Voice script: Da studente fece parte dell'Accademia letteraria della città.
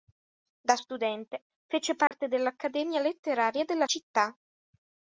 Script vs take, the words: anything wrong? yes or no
no